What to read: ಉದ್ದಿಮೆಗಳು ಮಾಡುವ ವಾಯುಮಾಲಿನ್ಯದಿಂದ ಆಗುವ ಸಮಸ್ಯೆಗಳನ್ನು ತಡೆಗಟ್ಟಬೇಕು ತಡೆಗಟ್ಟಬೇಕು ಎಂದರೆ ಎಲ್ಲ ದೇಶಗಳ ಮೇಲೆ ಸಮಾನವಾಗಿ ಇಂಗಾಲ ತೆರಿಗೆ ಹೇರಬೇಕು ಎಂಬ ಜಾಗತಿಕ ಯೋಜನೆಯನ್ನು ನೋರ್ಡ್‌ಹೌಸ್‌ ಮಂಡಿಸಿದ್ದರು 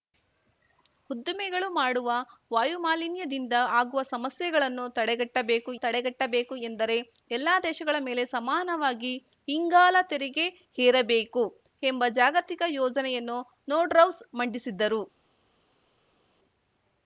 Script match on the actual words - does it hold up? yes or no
yes